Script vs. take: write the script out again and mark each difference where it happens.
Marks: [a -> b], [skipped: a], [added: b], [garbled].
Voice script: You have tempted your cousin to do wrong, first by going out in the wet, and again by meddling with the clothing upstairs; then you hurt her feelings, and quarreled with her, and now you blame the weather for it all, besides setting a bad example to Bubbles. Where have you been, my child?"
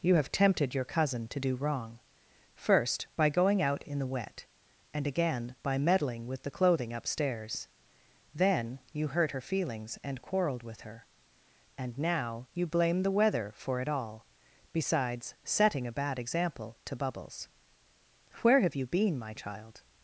You have tempted your cousin to do wrong, first by going out in the wet, and again by meddling with the clothing upstairs; then you hurt her feelings, and quarreled with her, and now you blame the weather for it all, besides setting a bad example to Bubbles. Where have you been, my child?"